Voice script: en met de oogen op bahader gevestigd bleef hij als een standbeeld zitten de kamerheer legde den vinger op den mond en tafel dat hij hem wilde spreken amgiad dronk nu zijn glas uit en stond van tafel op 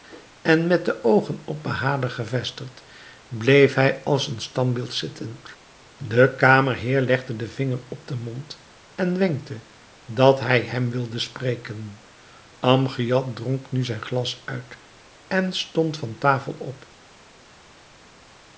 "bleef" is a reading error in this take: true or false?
false